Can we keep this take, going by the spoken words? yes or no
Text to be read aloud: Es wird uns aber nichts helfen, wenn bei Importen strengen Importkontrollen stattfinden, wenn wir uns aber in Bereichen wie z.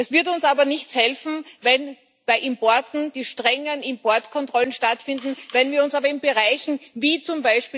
no